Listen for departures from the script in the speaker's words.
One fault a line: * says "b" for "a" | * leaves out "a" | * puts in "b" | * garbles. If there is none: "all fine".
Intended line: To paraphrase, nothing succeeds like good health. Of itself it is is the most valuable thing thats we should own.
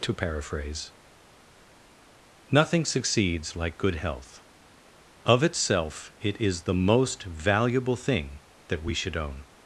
* leaves out "is"
* says "that" for "thats"